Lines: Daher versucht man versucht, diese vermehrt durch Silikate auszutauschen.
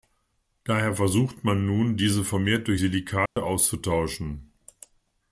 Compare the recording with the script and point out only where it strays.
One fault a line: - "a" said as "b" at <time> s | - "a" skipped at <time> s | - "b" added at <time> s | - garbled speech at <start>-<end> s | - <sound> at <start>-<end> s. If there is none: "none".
- "versucht" said as "nun" at 1.7 s
- dropout at 3.3-3.4 s